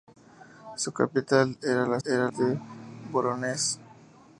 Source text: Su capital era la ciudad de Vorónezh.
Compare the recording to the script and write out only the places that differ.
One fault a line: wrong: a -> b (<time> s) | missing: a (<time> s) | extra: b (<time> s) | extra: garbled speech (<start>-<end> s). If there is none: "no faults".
wrong: ciudad -> era (2.0 s)